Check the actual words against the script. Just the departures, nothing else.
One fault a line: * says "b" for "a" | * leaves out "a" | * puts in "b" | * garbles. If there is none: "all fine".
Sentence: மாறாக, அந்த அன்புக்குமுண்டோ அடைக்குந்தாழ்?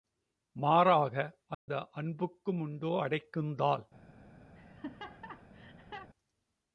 all fine